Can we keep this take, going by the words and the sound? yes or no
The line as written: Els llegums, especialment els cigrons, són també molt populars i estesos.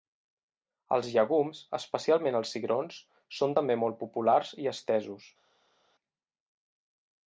yes